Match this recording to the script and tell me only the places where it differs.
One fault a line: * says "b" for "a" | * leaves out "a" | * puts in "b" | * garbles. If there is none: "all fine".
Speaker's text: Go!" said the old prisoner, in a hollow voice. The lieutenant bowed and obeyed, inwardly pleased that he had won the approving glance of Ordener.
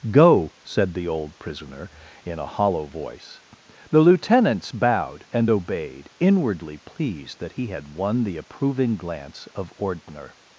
* says "lieutenants" for "lieutenant"